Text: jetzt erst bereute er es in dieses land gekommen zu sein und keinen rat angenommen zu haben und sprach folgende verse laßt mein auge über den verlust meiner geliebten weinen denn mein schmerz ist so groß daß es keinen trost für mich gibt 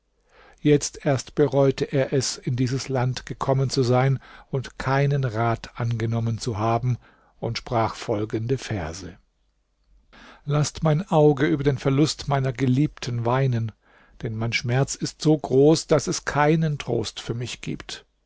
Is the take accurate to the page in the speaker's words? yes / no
yes